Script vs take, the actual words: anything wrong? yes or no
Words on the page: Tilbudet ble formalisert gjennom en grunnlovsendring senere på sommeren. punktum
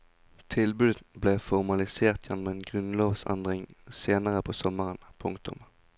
no